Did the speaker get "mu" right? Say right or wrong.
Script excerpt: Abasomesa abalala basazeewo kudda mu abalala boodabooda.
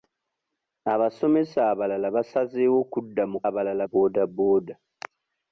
right